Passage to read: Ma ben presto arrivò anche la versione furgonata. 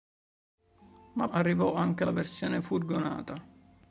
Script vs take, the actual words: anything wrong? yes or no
yes